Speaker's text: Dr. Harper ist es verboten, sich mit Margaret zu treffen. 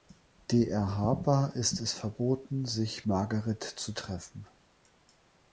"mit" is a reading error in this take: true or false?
true